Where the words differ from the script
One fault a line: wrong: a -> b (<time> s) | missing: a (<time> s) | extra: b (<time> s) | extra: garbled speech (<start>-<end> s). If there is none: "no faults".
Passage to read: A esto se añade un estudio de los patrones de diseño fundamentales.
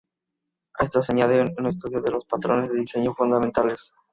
no faults